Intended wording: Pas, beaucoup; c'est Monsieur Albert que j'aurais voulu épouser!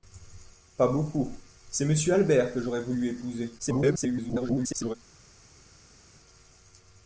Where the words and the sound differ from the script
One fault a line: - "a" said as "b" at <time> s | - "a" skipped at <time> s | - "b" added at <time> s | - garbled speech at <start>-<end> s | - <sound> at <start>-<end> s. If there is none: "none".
- garbled speech at 3.6-5.0 s